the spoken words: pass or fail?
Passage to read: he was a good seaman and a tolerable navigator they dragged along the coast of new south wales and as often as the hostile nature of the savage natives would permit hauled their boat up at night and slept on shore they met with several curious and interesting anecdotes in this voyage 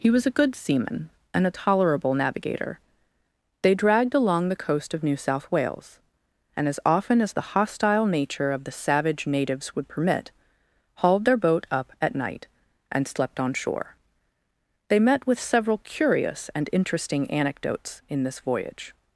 pass